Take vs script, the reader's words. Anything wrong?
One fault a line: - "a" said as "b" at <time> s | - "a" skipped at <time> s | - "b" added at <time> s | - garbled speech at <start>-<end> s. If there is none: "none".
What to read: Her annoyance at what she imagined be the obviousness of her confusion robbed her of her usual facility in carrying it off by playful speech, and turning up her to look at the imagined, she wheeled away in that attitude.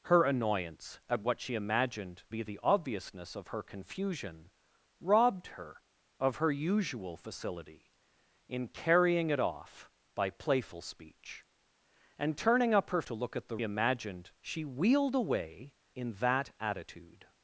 none